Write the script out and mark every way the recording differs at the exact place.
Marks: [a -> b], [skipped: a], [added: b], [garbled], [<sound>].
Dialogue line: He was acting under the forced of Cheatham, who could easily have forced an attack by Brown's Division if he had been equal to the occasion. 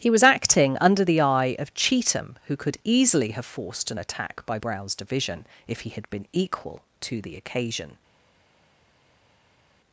He was acting under the [forced -> eye] of Cheatham, who could easily have forced an attack by Brown's Division if he had been equal to the occasion.